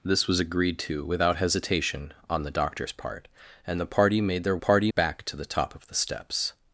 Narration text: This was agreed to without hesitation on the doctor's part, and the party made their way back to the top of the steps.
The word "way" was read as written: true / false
false